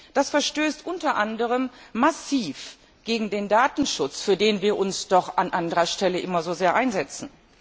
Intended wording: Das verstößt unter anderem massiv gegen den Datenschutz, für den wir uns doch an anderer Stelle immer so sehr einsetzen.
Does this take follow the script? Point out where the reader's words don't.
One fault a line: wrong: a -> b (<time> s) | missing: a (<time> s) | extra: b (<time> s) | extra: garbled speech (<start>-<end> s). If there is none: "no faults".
no faults